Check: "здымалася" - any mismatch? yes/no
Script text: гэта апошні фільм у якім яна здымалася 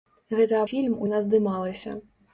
no